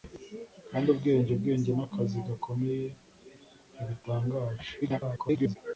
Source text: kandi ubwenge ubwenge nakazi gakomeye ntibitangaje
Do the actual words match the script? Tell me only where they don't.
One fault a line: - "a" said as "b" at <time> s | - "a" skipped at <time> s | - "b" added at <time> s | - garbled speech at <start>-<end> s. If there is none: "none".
- garbled speech at 4.8-5.6 s